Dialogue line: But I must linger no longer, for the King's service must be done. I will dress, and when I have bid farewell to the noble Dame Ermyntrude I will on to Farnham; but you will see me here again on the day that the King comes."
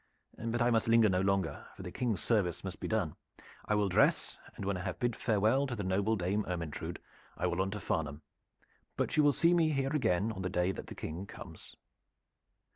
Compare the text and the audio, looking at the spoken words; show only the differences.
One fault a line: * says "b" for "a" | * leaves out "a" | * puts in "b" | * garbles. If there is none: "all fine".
all fine